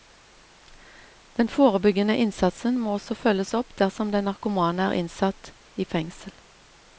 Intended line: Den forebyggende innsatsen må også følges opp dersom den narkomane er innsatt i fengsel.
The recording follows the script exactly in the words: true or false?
true